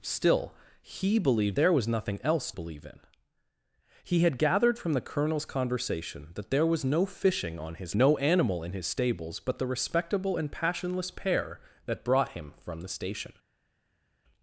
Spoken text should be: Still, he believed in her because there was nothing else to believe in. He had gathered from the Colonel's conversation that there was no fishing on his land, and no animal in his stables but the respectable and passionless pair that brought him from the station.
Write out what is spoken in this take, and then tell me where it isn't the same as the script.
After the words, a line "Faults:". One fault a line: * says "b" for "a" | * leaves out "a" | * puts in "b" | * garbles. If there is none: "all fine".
Still, he believed there was nothing else believe in. He had gathered from the Colonel's conversation that there was no fishing on his no animal in his stables but the respectable and passionless pair that brought him from the station.
Faults:
* leaves out "in her because"
* leaves out "to"
* leaves out "land and"